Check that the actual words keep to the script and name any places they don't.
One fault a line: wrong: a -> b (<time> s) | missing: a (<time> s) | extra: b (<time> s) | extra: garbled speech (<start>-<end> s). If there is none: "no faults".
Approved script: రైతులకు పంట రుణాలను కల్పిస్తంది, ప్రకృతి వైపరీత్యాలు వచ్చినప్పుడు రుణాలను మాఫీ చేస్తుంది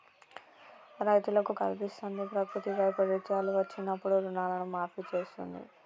missing: పంట రుణాలను (1.5 s)